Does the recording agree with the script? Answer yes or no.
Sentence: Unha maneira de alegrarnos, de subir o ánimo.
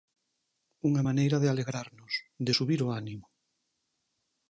yes